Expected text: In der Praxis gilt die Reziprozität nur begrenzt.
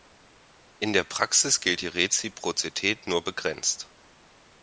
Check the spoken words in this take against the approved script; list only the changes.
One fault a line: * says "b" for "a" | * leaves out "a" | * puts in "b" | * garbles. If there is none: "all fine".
all fine